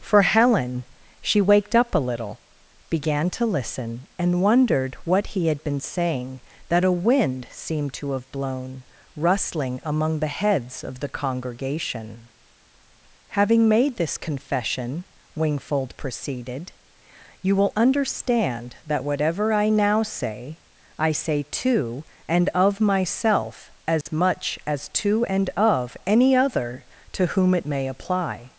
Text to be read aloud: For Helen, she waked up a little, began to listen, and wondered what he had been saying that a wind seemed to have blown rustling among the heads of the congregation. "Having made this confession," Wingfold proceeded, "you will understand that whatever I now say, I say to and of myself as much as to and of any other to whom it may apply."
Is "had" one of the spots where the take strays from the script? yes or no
no